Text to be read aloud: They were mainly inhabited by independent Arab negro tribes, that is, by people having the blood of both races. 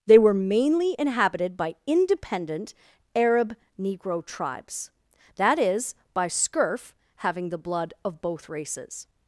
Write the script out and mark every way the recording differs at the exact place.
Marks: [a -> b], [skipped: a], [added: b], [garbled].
They were mainly inhabited by independent Arab negro tribes, that is, by [people -> scurf] having the blood of both races.